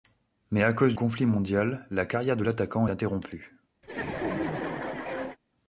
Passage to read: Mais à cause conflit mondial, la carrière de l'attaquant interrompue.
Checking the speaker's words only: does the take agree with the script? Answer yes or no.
yes